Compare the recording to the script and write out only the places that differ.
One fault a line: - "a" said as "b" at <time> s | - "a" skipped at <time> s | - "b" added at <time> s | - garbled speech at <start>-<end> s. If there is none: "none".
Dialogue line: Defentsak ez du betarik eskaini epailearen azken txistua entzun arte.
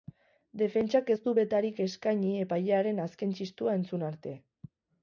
none